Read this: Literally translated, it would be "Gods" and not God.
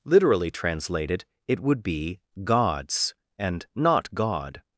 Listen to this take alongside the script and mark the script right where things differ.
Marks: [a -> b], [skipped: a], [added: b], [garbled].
Literally translated, it would be "Gods" and not God.